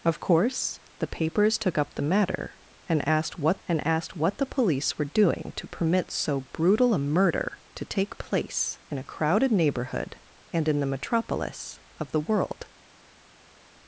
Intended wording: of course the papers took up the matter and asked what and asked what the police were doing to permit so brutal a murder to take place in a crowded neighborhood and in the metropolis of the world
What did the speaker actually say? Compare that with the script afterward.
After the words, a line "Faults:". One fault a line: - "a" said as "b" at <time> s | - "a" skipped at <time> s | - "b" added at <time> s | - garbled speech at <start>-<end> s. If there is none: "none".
of course the papers took up the matter and asked what and asked what the police were doing to permit so brutal a murder to take place in a crowded neighborhood and in the metropolis of the world
Faults:
none